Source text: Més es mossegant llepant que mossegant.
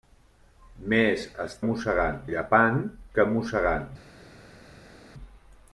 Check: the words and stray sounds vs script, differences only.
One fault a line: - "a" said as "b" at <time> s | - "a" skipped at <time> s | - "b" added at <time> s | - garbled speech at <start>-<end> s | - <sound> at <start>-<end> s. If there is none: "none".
none